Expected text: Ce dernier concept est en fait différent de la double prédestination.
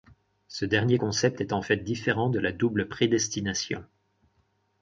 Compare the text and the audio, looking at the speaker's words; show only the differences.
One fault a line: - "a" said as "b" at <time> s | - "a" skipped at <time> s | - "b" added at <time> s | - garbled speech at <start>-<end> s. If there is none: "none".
none